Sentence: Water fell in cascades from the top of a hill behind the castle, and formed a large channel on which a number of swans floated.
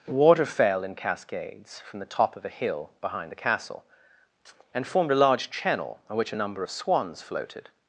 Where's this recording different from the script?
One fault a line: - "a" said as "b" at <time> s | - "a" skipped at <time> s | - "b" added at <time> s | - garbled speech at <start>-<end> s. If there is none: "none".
none